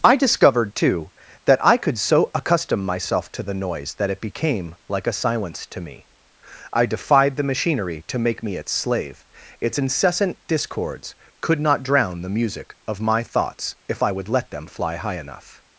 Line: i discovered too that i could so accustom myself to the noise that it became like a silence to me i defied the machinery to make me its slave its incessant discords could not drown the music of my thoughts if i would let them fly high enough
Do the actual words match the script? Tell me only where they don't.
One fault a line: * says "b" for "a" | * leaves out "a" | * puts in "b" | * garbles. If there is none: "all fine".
all fine